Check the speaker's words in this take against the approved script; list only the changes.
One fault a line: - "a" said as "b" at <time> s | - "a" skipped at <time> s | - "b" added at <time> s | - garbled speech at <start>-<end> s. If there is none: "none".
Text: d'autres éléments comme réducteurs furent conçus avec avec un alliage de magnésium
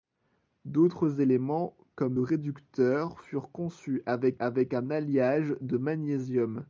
none